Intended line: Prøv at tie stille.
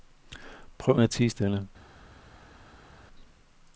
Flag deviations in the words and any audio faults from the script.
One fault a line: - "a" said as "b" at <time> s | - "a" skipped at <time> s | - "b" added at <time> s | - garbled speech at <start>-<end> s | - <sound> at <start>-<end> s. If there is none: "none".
none